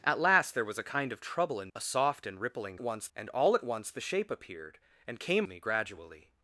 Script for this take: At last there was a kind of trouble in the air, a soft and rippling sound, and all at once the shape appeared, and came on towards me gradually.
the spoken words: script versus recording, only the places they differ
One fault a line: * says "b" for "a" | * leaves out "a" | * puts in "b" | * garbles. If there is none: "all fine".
* leaves out "the air"
* says "once" for "sound"
* leaves out "on towards"